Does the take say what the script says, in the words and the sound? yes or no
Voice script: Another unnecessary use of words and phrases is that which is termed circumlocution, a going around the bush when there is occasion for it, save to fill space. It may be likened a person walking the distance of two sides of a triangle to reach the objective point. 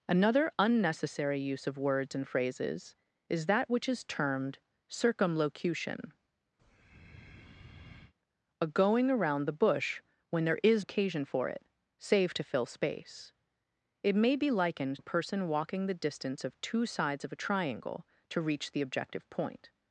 no